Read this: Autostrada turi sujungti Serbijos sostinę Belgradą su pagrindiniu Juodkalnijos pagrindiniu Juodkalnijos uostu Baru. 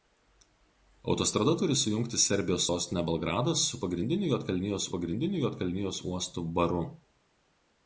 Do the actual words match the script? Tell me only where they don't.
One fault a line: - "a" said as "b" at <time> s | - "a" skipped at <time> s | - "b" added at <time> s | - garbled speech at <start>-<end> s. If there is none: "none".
none